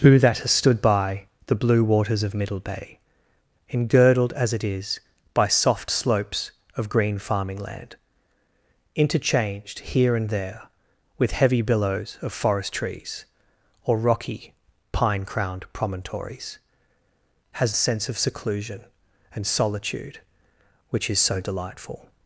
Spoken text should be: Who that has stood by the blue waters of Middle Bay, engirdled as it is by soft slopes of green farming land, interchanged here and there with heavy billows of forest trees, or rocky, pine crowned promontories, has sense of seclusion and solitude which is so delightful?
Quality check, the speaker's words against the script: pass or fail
pass